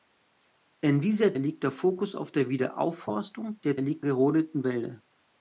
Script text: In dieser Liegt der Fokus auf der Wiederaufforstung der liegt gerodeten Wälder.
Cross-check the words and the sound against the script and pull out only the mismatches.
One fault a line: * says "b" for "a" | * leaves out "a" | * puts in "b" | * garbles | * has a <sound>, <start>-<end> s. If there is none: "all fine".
all fine